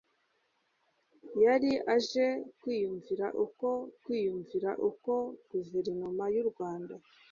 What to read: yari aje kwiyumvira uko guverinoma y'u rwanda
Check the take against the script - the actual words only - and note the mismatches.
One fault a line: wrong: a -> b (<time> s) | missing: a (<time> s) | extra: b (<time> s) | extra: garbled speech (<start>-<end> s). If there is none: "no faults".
extra: kwiyumvira uko (4.0 s)